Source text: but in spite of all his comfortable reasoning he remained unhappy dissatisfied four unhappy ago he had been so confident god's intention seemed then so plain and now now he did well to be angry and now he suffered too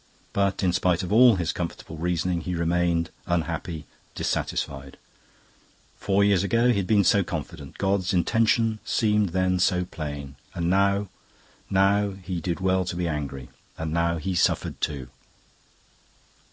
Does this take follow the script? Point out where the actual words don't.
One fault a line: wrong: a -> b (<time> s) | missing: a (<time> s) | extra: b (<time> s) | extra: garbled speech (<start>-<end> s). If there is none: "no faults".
wrong: unhappy -> years (6.2 s)